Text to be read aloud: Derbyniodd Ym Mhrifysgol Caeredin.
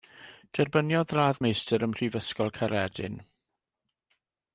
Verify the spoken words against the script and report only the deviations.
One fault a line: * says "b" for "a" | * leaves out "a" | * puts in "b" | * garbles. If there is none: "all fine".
* puts in "Radd Meistr"